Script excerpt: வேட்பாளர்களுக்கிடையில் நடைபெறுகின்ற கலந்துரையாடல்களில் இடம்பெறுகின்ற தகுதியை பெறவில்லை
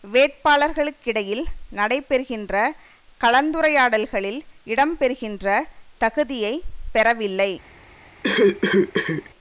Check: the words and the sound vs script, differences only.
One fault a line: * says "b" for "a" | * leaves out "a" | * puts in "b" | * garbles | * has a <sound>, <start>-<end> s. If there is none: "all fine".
* has a cough, 8.2-9.3 s